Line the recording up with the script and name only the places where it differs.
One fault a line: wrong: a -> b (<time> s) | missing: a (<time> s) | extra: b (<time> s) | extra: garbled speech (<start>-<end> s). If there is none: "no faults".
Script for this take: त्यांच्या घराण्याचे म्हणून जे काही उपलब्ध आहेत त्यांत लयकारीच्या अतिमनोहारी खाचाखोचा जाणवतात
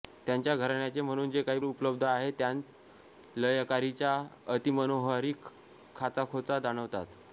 no faults